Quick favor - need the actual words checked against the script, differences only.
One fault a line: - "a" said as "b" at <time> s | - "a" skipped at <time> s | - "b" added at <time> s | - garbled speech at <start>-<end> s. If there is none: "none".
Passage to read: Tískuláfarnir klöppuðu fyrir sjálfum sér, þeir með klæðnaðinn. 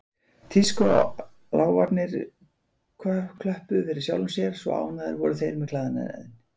- "svo ánægðir voru" added at 4.7 s